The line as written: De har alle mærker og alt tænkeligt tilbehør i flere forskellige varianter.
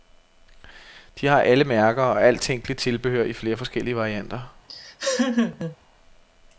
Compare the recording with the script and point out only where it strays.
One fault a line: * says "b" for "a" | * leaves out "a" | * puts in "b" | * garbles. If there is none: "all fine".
all fine